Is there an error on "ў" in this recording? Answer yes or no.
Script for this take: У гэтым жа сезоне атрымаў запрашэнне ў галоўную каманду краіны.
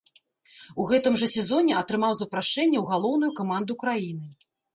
no